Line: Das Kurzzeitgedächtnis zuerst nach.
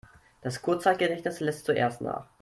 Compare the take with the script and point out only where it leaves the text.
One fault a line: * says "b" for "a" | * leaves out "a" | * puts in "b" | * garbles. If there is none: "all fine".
* puts in "lässt"